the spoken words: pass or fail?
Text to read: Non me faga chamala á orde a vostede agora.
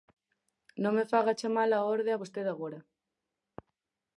pass